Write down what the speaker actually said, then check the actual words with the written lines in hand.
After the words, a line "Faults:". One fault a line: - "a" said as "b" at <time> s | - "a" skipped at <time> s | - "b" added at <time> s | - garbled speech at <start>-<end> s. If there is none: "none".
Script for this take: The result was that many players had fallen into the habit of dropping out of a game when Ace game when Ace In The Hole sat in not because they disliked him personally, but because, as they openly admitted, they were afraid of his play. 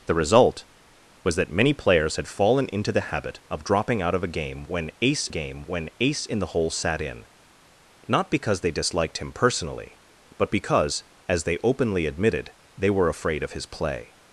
The result was that many players had fallen into the habit of dropping out of a game when Ace game when Ace In The Hole sat in not because they disliked him personally, but because, as they openly admitted, they were afraid of his play.
Faults:
none